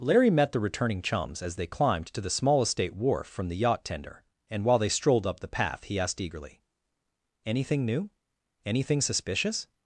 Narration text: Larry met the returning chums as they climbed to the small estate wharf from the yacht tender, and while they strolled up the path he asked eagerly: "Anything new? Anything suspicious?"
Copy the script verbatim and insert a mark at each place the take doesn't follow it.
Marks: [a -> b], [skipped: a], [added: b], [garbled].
Larry met the returning chums as they climbed to the small estate wharf from the yacht tender, and while they strolled up the path he asked eagerly: "Anything new? Anything suspicious?"